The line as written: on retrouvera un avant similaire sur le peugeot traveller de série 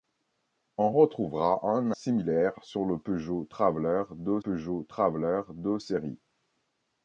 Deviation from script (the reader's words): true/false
true